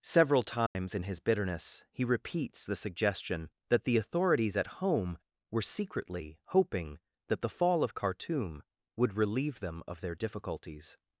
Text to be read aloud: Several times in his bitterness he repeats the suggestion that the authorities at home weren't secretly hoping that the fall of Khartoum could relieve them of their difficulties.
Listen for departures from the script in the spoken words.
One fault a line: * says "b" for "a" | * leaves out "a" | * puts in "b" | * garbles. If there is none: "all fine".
* says "were" for "weren't"
* says "would" for "could"